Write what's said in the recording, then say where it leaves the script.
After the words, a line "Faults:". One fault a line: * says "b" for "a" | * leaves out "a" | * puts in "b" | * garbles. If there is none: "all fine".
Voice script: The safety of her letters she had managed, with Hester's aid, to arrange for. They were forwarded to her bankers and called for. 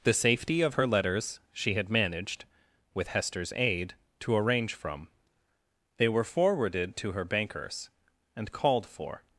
The safety of her letters she had managed, with Hester's aid, to arrange from. They were forwarded to her bankers and called for.
Faults:
* says "from" for "for"